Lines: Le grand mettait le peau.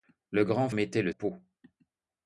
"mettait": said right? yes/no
yes